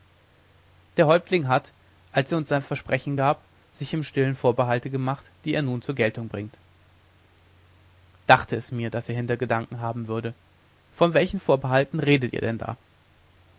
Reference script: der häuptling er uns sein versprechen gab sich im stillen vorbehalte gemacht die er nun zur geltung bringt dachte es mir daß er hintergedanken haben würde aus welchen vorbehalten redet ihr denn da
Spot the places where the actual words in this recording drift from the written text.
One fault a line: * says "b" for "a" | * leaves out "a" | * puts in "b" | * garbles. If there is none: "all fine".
* puts in "hat als"
* says "von" for "aus"